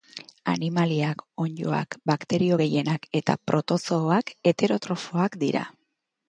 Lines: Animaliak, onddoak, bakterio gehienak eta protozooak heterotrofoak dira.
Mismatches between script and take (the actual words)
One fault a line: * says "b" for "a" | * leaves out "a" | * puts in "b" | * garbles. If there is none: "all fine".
all fine